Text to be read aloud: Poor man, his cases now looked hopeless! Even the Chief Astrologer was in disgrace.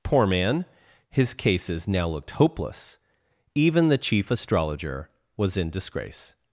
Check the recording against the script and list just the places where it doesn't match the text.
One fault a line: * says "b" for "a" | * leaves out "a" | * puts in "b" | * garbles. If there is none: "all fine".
all fine